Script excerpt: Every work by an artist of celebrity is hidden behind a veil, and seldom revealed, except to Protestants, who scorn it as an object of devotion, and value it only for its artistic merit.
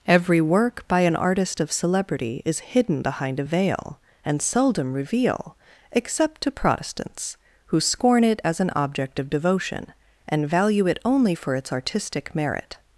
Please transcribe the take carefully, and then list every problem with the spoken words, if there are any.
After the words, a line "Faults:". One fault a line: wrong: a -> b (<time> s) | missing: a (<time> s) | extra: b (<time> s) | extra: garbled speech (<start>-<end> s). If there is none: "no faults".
Every work by an artist of celebrity is hidden behind a veil, and seldom reveal, except to Protestants, who scorn it as an object of devotion, and value it only for its artistic merit.
Faults:
wrong: revealed -> reveal (4.9 s)